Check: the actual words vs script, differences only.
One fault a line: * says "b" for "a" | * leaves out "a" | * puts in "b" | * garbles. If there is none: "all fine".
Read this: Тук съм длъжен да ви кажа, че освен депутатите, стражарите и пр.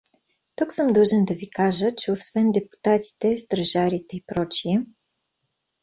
all fine